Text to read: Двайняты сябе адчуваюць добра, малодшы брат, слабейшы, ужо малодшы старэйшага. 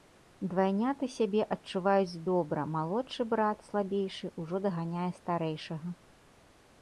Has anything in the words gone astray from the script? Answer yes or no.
yes